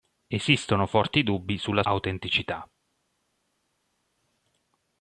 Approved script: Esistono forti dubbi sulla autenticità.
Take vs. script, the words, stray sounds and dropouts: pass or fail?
pass